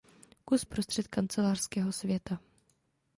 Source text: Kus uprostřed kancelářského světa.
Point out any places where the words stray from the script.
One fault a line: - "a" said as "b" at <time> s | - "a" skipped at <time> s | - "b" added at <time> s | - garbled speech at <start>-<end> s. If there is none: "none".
none